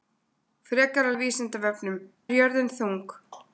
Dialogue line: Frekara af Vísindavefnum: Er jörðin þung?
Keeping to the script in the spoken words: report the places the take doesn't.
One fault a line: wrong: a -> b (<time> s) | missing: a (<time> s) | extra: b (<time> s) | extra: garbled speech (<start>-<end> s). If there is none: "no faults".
no faults